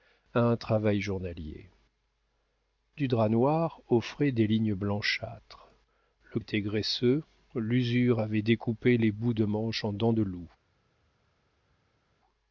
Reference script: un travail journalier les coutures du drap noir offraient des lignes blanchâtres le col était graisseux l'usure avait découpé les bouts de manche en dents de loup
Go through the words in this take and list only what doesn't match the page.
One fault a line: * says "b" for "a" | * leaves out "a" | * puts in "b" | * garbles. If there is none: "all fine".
* leaves out "les coutures"
* leaves out "col"